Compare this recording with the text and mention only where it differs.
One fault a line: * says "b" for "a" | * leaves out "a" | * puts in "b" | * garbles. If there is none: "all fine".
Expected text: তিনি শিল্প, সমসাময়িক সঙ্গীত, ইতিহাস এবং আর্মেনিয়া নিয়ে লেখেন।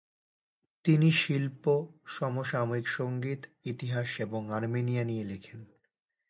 all fine